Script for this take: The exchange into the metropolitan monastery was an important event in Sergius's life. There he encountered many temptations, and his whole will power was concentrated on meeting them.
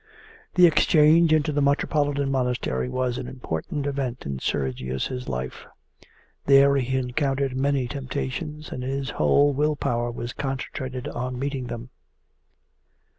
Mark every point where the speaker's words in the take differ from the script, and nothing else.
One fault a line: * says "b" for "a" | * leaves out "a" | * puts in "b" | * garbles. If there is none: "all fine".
all fine